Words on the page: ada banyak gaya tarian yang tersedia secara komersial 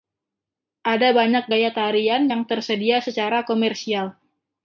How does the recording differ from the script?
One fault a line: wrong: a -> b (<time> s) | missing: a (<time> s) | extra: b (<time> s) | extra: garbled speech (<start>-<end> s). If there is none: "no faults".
no faults